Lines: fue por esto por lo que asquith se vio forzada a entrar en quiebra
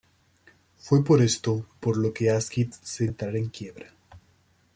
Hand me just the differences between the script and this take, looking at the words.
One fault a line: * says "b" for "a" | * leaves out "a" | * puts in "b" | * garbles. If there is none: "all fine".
* leaves out "vio forzada"